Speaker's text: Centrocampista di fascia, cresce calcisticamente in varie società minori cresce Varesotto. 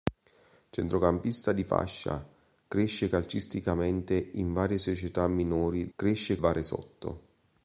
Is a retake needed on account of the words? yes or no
no